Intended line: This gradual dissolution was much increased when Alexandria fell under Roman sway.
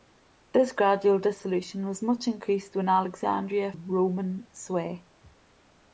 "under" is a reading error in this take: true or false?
true